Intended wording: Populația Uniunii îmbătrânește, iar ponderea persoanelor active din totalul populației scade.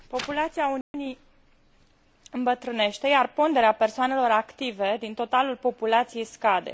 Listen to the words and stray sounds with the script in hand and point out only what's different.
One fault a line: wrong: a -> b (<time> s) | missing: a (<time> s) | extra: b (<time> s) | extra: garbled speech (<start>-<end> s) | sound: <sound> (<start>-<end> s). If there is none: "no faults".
sound: dropout (0.8-0.9 s)